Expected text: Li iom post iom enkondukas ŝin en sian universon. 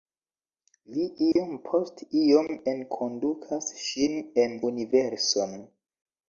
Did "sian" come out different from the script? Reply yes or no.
yes